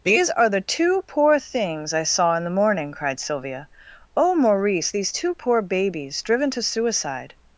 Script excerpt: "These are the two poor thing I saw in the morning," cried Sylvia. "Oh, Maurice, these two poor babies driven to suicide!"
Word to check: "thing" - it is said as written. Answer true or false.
false